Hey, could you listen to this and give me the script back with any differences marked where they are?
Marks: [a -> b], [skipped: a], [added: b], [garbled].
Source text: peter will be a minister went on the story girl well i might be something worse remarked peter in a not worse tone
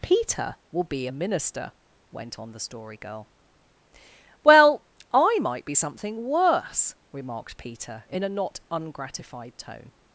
peter will be a minister went on the story girl well i might be something worse remarked peter in a not [worse -> ungratified] tone